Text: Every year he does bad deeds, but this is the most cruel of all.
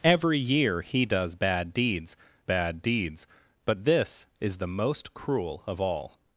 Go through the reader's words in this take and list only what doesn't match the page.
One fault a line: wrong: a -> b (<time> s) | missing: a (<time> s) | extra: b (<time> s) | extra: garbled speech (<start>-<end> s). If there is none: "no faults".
extra: bad deeds (2.4 s)